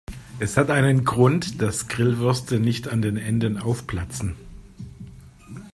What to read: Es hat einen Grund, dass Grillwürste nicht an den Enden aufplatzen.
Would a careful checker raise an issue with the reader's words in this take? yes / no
no